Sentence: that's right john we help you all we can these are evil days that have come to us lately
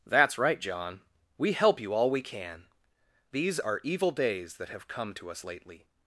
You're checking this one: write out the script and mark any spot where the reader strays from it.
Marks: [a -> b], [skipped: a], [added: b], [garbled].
that's right john we help you all we can these are evil days that have come to us lately